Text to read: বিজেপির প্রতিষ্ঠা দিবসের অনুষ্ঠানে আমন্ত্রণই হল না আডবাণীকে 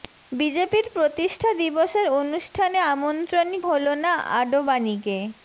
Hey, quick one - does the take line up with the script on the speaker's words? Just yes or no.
yes